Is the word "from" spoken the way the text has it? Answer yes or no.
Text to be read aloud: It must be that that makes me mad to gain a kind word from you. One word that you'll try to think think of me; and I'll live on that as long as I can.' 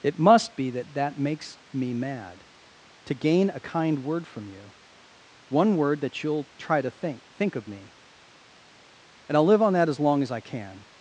yes